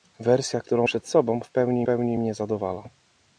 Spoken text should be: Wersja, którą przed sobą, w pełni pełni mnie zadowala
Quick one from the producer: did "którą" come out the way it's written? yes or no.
yes